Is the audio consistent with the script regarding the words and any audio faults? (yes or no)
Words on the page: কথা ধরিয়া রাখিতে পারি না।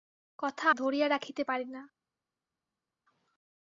yes